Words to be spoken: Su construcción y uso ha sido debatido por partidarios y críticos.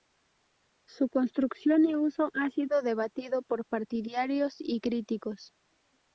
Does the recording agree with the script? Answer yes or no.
yes